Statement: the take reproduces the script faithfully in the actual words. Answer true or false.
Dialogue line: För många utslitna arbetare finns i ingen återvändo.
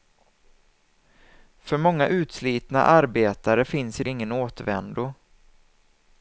true